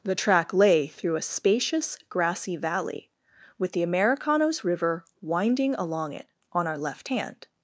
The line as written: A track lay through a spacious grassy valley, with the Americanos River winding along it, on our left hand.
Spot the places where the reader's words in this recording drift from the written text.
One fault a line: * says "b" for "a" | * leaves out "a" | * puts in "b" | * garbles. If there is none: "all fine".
* says "The" for "A"